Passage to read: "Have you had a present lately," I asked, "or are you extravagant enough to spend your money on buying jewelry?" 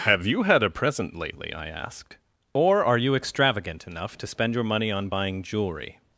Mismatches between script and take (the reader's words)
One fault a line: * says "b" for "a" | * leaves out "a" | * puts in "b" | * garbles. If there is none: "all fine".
all fine